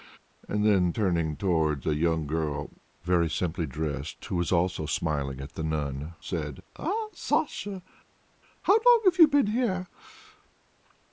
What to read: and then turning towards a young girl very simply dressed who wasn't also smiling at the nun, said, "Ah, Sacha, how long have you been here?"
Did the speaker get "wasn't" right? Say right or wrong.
wrong